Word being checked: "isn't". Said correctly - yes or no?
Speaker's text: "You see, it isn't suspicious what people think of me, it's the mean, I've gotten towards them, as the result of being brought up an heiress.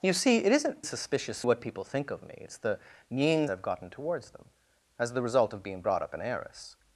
yes